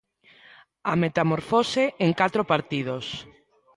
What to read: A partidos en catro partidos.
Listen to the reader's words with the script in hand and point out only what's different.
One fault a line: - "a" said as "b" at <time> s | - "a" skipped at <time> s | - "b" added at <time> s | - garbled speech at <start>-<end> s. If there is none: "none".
- "partidos" said as "metamorfose" at 1.0 s